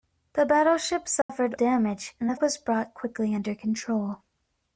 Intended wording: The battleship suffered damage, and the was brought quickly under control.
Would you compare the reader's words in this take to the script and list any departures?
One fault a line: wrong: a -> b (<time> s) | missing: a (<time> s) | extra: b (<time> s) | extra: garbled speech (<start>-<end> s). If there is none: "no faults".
no faults